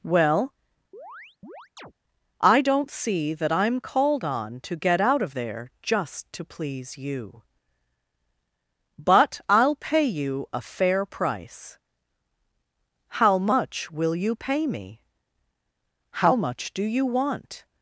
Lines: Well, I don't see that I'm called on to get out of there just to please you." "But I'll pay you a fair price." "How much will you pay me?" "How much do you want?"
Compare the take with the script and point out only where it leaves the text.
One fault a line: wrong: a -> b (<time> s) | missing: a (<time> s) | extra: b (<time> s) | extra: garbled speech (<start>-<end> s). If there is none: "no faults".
no faults